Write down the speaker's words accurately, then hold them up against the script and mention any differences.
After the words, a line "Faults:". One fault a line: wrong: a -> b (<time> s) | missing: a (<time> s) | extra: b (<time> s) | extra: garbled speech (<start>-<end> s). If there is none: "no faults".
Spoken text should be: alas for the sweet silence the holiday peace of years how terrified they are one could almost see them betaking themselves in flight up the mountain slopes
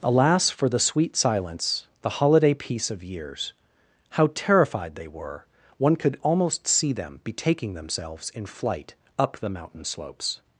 alas for the sweet silence the holiday peace of years how terrified they were one could almost see them betaking themselves in flight up the mountain slopes
Faults:
wrong: are -> were (5.1 s)